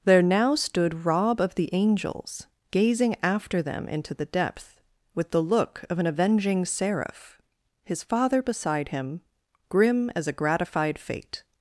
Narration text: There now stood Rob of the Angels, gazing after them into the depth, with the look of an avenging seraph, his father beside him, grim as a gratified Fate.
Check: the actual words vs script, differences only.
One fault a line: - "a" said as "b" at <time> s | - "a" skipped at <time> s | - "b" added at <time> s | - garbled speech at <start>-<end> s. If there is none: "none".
none